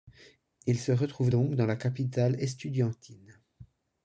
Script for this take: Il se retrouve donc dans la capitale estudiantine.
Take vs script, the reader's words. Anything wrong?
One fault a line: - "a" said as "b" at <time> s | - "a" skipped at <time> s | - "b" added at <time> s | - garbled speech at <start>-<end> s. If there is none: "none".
none